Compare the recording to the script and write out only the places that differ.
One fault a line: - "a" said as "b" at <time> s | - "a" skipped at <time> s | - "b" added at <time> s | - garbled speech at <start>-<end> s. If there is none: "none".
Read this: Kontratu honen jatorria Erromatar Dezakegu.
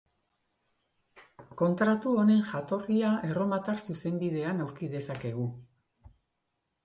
- "Zuzenbidean aurki" added at 3.9 s